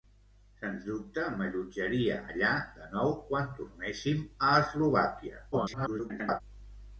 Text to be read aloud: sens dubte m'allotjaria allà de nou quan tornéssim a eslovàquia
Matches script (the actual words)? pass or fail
fail